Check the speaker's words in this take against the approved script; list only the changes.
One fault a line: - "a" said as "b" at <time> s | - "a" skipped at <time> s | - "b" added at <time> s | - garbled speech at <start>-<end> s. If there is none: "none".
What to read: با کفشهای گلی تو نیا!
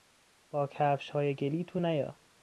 none